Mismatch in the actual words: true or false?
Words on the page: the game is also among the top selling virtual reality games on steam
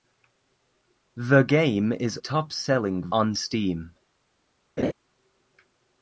true